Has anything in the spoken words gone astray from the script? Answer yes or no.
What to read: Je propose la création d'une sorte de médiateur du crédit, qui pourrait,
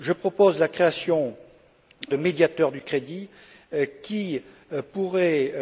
yes